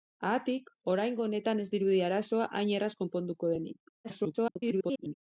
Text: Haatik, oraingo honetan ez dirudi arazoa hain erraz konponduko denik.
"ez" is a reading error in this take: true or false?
false